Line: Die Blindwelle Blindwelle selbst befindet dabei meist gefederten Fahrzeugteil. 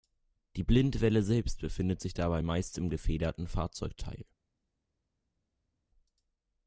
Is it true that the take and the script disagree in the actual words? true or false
true